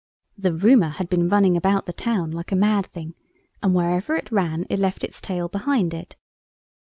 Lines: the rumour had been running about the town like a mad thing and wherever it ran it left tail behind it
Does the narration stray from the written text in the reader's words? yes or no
yes